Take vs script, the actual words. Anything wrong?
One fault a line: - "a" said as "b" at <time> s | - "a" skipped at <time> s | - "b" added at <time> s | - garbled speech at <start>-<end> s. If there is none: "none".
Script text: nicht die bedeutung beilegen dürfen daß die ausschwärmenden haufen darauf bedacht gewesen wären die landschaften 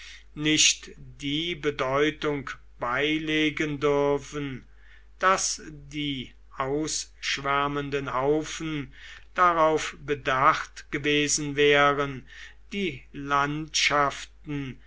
none